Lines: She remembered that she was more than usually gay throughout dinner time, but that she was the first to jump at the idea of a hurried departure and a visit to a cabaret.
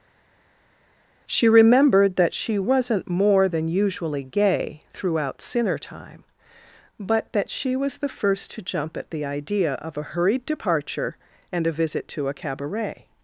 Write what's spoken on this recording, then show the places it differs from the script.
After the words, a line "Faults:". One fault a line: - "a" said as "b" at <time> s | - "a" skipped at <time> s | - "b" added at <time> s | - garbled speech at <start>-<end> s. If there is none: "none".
She remembered that she wasn't more than usually gay throughout sinner time, but that she was the first to jump at the idea of a hurried departure and a visit to a cabaret.
Faults:
- "was" said as "wasn't" at 2.6 s
- "dinner" said as "sinner" at 5.4 s